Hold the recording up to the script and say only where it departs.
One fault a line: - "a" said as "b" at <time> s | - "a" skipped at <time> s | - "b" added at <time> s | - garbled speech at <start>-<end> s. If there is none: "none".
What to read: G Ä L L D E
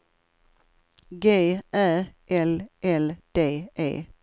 none